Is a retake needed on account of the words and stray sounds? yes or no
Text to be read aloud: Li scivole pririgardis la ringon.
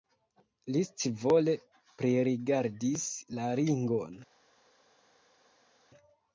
no